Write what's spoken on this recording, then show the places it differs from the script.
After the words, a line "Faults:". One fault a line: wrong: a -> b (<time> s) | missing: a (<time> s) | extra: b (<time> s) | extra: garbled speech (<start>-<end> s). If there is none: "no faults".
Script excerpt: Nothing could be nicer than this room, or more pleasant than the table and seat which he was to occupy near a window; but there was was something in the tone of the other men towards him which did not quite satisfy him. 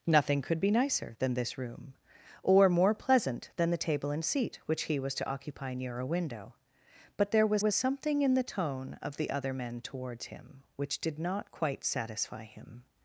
Nothing could be nicer than this room, or more pleasant than the table and seat which he was to occupy near a window; but there was was something in the tone of the other men towards him which did not quite satisfy him.
Faults:
no faults